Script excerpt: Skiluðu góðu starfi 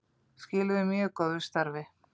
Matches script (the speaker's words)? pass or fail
fail